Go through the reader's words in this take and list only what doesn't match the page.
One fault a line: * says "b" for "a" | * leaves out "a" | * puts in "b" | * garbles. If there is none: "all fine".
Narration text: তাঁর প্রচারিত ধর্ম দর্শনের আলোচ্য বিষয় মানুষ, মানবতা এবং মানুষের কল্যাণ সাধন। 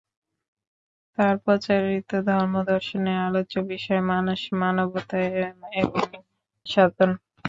* leaves out "মানুষের কল্যাণ"